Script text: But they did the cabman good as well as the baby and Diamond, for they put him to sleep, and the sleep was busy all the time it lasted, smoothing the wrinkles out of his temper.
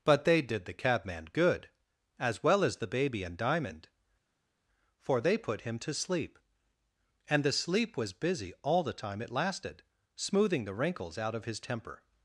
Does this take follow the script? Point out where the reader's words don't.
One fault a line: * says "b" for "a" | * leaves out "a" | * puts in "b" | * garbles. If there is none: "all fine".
all fine